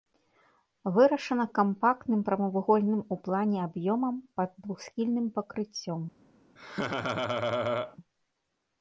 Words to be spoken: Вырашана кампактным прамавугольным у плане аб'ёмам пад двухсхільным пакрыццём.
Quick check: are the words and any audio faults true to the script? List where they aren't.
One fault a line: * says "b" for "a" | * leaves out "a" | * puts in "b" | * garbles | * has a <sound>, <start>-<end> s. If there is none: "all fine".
* has a laugh, 6.6-8.0 s